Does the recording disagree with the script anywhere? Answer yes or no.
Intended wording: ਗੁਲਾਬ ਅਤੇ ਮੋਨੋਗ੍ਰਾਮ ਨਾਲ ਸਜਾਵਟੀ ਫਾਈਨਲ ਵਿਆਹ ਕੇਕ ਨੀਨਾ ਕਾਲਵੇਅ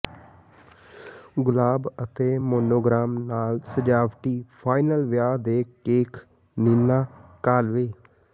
yes